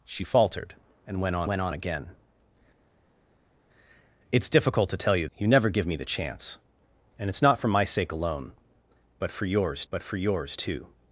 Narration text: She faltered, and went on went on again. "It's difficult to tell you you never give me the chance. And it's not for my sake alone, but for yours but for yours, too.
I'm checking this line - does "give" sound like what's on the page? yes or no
yes